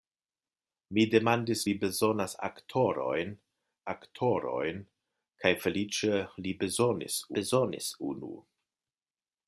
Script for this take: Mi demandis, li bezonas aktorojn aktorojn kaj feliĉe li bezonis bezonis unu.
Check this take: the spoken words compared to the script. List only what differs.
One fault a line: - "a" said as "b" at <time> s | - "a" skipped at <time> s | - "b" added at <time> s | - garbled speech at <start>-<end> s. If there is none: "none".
none